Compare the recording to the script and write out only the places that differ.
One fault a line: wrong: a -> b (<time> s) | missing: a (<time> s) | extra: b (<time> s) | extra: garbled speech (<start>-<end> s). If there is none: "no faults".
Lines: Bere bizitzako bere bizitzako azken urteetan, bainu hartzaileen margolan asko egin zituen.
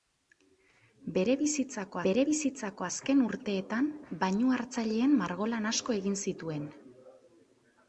no faults